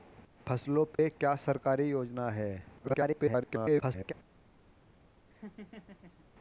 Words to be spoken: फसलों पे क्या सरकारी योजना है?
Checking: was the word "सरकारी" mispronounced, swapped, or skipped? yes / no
no